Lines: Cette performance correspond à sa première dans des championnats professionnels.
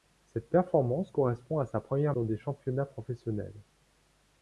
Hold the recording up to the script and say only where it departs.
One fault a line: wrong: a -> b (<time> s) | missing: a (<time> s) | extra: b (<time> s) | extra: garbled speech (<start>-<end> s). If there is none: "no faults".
no faults